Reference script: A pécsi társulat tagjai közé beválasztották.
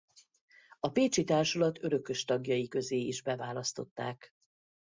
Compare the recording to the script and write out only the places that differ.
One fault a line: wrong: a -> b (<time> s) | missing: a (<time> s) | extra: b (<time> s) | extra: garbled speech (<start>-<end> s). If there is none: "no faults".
extra: örökös (1.8 s)
extra: is (3.0 s)